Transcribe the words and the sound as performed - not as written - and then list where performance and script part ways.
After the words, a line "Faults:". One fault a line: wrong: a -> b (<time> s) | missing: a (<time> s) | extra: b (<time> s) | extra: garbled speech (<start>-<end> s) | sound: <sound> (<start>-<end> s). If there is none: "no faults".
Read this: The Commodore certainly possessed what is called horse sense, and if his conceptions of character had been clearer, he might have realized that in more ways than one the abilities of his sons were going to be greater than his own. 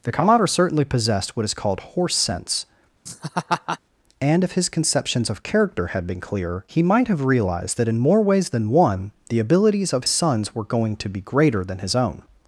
The Commodore certainly possessed what is called horse sense, and if his conceptions of character had been clearer, he might have realized that in more ways than one the abilities of sons were going to be greater than his own.
Faults:
sound: laugh (3.1-3.8 s)
missing: his (10.0 s)